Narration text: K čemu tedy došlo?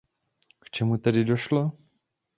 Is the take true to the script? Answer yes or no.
yes